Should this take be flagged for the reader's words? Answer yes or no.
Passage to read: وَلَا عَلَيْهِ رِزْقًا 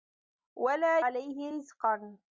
no